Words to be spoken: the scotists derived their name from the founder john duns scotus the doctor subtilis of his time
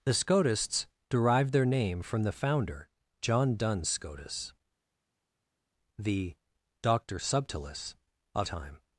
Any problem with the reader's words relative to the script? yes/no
yes